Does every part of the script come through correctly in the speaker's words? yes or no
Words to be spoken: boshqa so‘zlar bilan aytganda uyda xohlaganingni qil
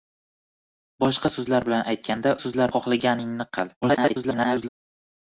no